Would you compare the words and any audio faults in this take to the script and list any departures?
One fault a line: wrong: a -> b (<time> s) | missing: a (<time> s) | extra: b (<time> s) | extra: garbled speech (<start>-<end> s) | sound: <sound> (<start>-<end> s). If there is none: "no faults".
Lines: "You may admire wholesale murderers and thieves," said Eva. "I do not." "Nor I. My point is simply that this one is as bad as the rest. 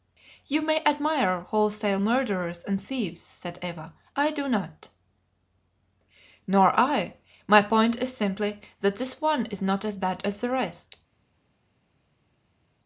extra: not (9.6 s)